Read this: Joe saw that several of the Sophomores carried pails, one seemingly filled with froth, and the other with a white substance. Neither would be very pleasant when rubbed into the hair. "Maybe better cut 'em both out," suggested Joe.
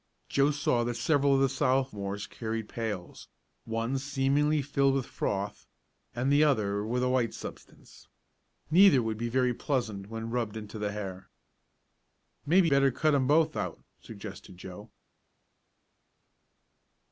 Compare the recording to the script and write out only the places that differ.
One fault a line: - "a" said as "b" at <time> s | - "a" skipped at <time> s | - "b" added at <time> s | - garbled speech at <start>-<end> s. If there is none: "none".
none